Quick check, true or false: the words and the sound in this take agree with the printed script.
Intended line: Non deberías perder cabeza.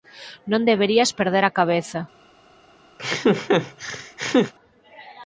false